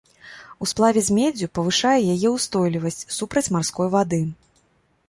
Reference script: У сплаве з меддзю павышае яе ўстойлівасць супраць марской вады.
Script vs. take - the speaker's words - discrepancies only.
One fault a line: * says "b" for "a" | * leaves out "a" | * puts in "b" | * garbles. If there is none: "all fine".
all fine